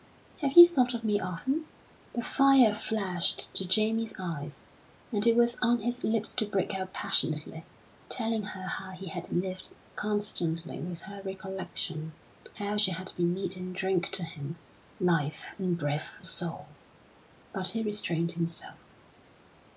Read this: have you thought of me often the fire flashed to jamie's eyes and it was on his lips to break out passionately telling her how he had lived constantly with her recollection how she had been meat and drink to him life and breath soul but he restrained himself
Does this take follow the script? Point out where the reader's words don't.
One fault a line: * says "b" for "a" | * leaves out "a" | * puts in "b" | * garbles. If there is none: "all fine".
all fine